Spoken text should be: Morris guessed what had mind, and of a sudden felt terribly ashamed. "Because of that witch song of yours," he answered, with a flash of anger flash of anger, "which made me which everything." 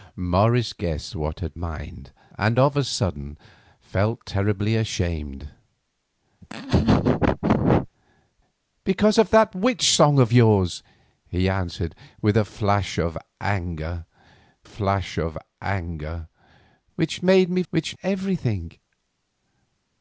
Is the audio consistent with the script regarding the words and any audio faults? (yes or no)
no